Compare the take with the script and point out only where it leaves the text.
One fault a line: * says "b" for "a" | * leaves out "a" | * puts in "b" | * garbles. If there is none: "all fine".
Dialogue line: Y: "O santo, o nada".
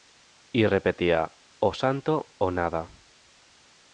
* puts in "repetía"